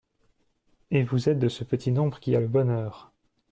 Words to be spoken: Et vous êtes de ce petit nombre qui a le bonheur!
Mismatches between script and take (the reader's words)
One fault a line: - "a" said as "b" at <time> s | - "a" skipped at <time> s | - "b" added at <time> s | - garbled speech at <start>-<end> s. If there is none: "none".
none